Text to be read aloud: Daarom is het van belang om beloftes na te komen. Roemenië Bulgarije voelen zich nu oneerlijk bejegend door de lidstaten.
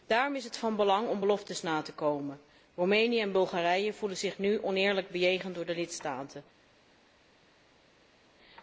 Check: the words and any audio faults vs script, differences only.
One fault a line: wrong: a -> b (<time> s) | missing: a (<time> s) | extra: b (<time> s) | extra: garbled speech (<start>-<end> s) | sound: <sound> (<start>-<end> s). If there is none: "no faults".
extra: en (3.2 s)